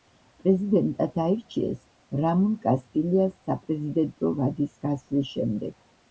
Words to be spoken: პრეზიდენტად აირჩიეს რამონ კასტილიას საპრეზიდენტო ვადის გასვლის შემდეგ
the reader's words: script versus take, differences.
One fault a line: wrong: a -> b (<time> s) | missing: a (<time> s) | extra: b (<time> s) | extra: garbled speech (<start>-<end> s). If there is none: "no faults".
no faults